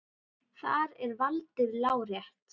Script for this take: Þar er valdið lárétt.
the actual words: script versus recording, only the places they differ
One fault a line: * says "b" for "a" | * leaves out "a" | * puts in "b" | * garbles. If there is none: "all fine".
all fine